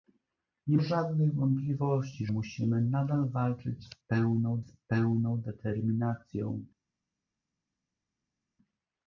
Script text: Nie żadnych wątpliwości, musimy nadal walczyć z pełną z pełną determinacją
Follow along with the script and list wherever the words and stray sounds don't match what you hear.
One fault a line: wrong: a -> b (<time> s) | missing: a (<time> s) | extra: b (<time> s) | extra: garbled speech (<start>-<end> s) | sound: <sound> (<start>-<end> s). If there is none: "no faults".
no faults